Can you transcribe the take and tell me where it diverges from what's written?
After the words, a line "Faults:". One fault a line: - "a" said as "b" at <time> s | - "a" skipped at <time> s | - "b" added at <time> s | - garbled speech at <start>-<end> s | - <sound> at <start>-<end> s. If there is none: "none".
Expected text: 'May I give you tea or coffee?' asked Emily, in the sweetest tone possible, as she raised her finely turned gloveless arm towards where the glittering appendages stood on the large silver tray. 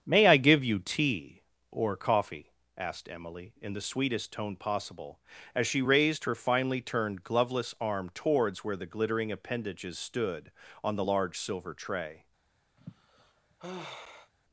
'May I give you tea or coffee?' asked Emily, in the sweetest tone possible, as she raised her finely turned gloveless arm towards where the glittering appendages stood on the large silver tray.
Faults:
- sigh at 12.8-14.3 s